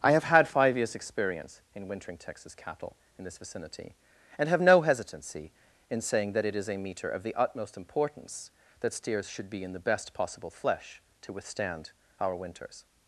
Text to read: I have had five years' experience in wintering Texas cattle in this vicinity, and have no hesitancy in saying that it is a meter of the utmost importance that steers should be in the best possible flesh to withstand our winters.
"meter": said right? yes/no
yes